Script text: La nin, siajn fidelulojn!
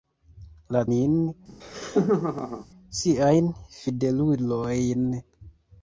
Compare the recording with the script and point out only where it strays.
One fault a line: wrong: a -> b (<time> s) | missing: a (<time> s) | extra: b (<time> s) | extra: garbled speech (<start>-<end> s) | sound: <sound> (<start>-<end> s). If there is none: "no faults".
sound: laugh (1.5-2.7 s)